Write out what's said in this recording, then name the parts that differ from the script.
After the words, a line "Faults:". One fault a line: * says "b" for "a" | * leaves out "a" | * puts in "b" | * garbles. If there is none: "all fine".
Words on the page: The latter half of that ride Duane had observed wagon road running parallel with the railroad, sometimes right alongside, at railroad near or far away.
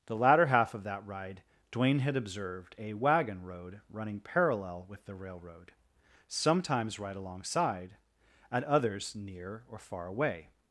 The latter half of that ride Duane had observed a wagon road running parallel with the railroad, sometimes right alongside, at others near or far away.
Faults:
* puts in "a"
* says "others" for "railroad"